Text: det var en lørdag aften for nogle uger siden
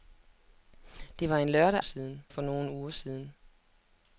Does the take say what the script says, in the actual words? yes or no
no